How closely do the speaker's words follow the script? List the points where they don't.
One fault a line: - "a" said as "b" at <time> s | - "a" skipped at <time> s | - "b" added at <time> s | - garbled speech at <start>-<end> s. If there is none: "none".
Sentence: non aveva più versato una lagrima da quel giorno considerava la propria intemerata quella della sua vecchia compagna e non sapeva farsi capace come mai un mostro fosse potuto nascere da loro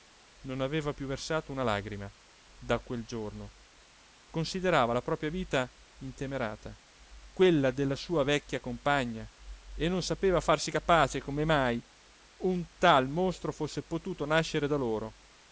- "vita" added at 5.3 s
- "tal" added at 12.8 s